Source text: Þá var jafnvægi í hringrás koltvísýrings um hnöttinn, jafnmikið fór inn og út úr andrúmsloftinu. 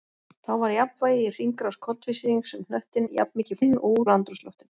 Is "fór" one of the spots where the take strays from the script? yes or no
yes